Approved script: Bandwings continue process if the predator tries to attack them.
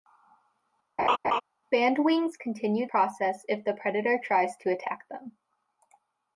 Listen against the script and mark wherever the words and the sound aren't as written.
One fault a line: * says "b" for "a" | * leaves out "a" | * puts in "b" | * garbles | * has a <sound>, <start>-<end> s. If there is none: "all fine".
* has a laugh, 1.0-1.4 s